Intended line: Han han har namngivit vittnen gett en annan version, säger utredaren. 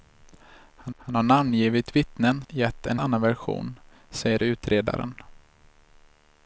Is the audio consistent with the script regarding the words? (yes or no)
yes